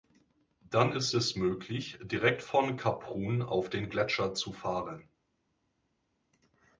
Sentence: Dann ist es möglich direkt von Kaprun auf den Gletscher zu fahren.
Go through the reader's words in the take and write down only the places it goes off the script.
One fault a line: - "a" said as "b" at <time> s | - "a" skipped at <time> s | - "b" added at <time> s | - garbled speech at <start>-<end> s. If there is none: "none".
none